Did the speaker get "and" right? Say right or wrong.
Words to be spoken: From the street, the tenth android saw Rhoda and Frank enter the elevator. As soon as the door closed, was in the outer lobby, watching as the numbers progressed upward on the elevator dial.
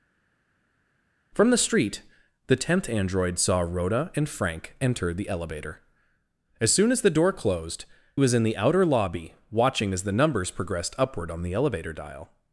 right